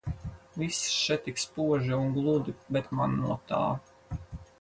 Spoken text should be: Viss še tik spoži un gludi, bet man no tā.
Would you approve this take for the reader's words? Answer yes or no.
yes